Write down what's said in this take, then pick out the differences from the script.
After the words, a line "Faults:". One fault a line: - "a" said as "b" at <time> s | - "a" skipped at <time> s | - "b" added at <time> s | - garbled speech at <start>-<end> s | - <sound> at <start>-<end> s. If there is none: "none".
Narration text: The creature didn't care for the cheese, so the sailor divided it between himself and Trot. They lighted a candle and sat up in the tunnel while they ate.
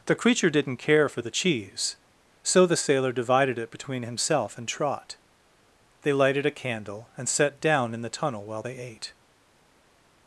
The creature didn't care for the cheese, so the sailor divided it between himself and Trot. They lighted a candle and sat down in the tunnel while they ate.
Faults:
- "up" said as "down" at 7.6 s